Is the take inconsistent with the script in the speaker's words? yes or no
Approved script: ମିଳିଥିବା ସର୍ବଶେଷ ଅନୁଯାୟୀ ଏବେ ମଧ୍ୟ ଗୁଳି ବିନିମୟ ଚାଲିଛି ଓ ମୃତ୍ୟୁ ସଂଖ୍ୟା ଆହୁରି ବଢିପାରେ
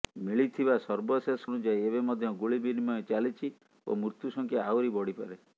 no